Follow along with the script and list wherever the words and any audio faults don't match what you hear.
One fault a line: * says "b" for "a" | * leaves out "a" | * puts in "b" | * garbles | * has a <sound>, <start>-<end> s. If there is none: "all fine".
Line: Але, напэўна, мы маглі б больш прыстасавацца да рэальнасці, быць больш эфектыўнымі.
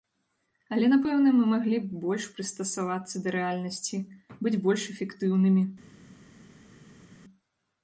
all fine